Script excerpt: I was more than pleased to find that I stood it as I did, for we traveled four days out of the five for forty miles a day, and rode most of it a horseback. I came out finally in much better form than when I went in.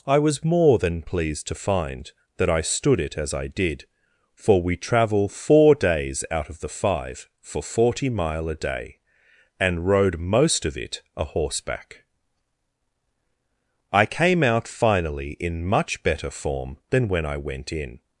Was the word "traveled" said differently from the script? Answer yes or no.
yes